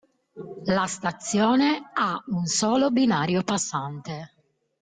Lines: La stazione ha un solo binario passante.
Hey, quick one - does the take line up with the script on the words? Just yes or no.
yes